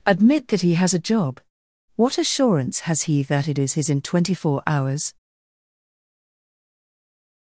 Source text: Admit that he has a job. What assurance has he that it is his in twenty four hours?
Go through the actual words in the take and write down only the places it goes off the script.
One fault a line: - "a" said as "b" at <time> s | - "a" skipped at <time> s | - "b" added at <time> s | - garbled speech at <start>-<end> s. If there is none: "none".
none